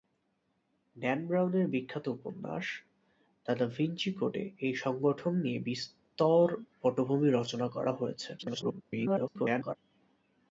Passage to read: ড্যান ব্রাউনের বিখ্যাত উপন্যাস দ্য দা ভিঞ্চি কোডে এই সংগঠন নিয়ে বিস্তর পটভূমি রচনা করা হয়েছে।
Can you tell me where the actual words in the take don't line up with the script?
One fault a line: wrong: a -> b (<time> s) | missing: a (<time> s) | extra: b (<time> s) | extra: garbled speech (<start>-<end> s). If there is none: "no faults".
extra: garbled speech (8.4-9.7 s)